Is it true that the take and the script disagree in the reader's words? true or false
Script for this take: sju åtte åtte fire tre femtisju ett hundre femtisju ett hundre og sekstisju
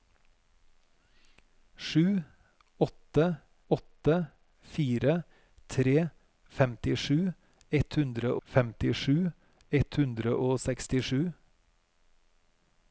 false